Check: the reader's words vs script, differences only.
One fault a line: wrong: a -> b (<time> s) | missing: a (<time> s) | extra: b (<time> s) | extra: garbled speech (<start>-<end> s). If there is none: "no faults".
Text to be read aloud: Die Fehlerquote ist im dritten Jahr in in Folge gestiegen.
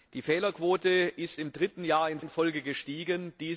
no faults